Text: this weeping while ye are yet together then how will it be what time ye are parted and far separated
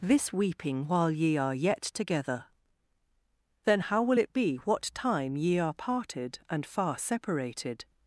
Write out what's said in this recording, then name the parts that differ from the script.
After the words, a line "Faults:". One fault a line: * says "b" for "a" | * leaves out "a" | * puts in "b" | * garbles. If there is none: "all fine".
this weeping while ye are yet together then how will it be what time ye are parted and far separated
Faults:
all fine